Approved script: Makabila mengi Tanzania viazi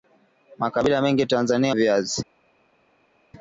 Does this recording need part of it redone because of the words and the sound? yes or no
no